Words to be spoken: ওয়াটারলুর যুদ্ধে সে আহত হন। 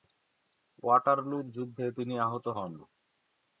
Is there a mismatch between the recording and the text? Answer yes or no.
yes